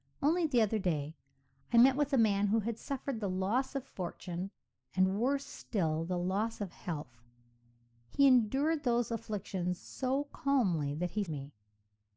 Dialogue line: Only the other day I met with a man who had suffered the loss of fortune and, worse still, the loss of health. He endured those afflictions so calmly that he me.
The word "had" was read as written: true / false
true